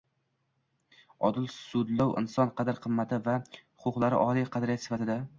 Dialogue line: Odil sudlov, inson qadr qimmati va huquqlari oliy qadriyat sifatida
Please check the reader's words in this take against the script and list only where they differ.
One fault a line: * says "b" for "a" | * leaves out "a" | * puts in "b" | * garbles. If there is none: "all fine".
all fine